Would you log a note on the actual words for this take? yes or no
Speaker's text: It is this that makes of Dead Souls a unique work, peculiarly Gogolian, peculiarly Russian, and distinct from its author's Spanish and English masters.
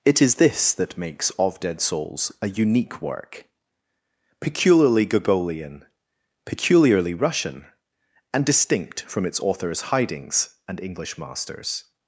yes